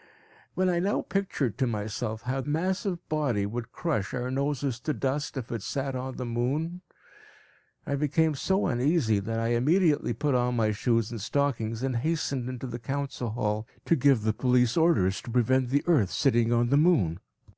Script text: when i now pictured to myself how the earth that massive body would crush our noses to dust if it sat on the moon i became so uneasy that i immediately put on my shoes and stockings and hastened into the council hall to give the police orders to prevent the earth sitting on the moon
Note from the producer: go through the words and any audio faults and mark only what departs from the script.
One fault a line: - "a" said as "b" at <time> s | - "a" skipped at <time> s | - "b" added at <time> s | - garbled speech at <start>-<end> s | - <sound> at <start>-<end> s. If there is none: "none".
- "the earth that" skipped at 2.4 s